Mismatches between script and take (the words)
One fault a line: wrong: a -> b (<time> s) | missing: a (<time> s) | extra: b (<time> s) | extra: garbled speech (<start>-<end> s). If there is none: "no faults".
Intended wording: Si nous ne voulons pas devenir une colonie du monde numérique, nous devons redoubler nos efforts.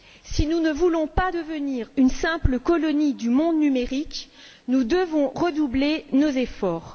extra: simple (2.1 s)